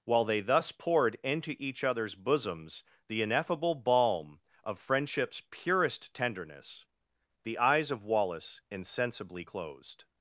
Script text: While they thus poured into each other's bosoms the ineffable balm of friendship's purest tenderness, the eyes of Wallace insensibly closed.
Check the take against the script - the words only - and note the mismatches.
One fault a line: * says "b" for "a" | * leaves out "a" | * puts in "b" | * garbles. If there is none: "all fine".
all fine